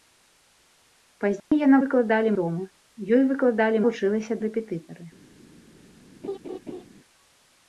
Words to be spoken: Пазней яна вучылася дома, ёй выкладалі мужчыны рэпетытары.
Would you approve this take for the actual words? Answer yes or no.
no